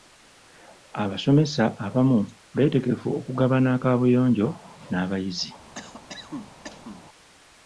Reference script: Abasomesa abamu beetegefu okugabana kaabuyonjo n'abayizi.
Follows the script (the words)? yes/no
yes